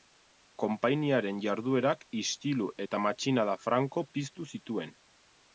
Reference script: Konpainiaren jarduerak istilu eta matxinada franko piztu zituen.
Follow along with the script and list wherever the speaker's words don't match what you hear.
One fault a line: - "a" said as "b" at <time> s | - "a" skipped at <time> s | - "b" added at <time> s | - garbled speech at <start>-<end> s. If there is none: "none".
none